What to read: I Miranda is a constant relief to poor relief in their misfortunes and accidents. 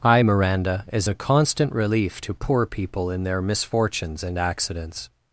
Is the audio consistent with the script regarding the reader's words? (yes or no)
no